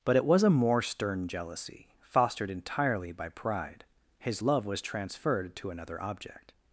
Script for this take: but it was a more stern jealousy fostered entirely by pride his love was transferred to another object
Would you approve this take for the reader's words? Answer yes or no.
yes